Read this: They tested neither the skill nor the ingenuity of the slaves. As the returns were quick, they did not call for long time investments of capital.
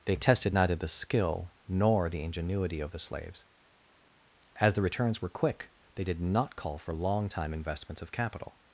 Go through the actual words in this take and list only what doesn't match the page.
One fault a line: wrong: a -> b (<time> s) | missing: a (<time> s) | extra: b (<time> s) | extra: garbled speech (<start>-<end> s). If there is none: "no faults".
no faults